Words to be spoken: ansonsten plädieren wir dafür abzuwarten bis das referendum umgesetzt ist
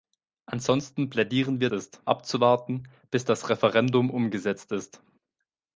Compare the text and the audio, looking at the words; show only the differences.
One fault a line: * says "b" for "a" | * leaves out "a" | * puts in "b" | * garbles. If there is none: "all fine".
* says "ist" for "dafür"